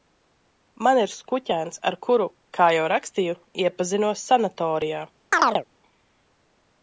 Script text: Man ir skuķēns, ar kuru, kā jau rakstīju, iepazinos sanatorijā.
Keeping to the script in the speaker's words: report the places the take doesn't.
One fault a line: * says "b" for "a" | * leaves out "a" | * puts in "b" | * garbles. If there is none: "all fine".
all fine